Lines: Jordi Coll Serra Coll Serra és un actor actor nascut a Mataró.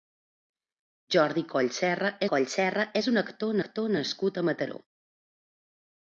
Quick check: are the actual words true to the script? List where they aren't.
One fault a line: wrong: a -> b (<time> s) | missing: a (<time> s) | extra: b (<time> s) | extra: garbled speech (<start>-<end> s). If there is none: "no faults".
no faults